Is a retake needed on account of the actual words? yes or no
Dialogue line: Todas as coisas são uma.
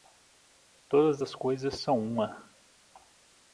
no